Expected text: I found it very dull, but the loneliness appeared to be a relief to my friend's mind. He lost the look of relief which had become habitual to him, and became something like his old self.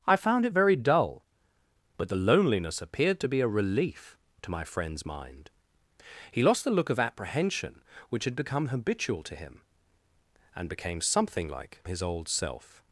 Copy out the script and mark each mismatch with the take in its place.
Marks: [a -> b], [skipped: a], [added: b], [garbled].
I found it very dull, but the loneliness appeared to be a relief to my friend's mind. He lost the look of [relief -> apprehension] which had become habitual to him, and became something like his old self.